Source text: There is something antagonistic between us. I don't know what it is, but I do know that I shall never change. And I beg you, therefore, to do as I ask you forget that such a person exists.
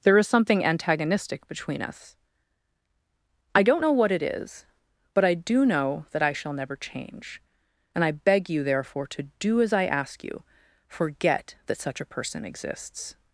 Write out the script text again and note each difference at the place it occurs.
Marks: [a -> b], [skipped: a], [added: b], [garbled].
There is something antagonistic between us. I don't know what it is, but I do know that I shall never change. And I beg you, therefore, to do as I ask you forget that such a person exists.